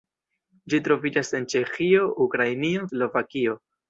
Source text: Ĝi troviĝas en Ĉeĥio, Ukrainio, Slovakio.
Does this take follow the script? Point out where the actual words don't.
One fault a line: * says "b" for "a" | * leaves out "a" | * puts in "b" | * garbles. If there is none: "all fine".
all fine